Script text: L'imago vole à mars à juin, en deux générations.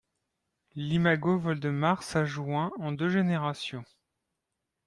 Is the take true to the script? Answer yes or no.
no